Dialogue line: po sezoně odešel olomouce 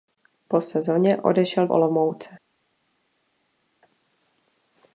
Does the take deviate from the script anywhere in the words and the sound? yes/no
no